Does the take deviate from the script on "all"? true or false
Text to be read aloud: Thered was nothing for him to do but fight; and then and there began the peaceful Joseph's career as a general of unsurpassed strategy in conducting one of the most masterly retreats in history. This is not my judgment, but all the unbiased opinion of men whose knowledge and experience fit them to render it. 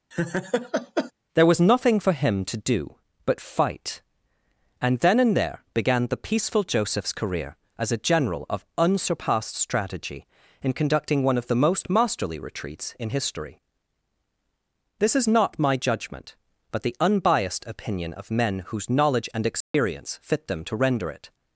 true